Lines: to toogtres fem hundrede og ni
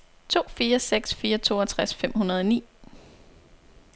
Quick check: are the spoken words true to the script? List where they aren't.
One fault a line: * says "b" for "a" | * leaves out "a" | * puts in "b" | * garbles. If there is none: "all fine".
* puts in "fire seks fire"